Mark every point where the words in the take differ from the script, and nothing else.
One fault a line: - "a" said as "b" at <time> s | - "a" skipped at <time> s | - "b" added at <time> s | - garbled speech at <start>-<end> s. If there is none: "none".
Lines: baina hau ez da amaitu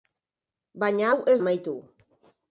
- "da" skipped at 1.4 s